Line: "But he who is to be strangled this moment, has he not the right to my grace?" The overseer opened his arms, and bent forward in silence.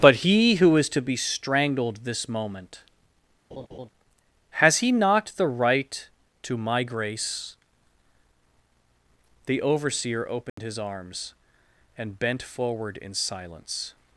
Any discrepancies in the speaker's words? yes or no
no